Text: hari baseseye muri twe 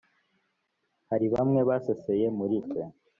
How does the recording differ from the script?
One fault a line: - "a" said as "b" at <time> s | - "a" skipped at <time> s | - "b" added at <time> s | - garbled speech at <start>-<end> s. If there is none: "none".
- "bamwe" added at 1.3 s